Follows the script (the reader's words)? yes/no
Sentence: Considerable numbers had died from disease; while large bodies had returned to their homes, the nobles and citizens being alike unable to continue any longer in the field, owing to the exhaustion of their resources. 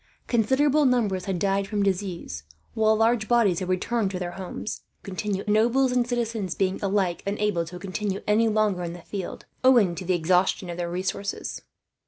no